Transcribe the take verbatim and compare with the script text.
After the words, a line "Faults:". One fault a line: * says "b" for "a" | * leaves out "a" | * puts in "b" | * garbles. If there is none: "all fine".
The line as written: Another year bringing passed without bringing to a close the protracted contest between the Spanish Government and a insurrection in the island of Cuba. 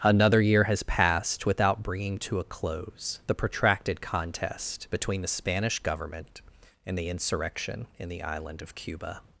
Another year has passed without bringing to a close the protracted contest between the Spanish Government and the insurrection in the island of Cuba.
Faults:
* says "has" for "bringing"
* says "the" for "a"